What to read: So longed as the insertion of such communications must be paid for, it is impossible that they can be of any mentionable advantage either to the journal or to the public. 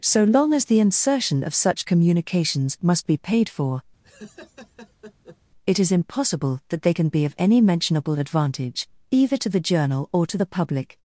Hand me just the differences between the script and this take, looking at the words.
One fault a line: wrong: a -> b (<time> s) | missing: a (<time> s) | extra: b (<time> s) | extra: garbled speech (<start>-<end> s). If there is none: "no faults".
wrong: longed -> long (0.2 s)